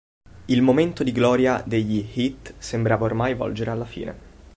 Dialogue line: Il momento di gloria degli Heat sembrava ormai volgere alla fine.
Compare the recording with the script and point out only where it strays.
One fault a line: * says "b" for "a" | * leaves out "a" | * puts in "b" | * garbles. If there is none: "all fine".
all fine